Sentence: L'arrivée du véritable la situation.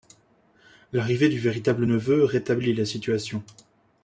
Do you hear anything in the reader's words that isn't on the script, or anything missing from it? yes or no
yes